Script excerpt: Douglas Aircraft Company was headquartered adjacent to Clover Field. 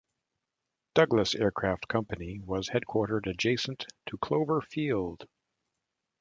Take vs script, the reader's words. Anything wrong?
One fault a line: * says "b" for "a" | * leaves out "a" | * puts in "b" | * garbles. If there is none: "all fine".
all fine